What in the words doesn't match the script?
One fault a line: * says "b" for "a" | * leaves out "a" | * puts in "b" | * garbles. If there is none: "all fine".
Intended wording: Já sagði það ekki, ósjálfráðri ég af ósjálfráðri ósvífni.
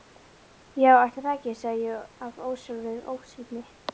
* says "ætli" for "sagði"
* says "sagði" for "ósjálfráðri"